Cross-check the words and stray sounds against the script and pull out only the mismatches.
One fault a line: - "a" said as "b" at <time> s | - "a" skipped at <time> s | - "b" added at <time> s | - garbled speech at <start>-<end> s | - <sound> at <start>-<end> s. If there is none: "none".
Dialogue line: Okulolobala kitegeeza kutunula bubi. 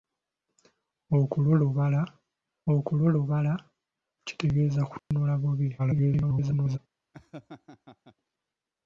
- "okulolobala" added at 2.7 s
- dropout at 5.0-5.1 s
- garbled speech at 5.8-6.8 s
- laugh at 7.1-8.2 s